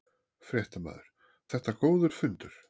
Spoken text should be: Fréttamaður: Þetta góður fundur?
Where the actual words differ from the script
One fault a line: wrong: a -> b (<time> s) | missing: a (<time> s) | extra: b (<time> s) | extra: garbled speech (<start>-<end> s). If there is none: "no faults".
no faults